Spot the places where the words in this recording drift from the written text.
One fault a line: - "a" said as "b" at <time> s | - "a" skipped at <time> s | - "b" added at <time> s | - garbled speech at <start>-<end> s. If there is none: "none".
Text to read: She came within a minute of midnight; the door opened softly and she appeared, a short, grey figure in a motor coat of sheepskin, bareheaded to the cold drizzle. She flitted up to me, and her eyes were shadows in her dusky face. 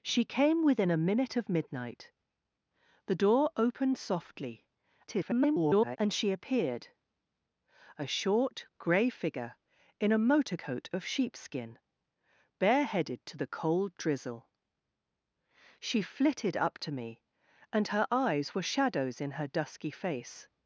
- garbled speech at 5.1-6.0 s